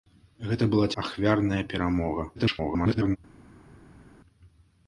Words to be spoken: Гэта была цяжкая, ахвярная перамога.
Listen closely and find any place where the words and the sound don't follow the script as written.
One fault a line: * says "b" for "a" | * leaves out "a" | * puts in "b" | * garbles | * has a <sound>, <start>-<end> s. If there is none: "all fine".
* leaves out "цяжкая"
* garbles